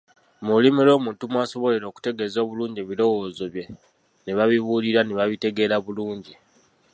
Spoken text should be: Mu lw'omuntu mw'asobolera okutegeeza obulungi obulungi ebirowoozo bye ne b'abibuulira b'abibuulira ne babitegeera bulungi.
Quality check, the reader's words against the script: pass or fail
fail